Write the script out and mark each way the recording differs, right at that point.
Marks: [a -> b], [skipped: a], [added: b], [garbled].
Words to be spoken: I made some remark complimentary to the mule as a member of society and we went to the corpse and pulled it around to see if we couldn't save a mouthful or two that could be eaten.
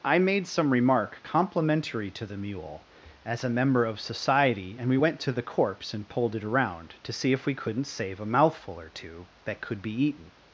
I made some remark complimentary to the mule as a member of society and we went to the corpse and pulled it around to see if we couldn't save a mouthful or two that could be eaten.